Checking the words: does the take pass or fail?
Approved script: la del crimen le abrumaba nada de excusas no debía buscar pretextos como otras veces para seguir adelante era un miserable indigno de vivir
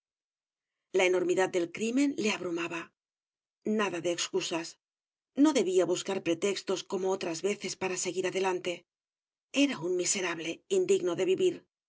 fail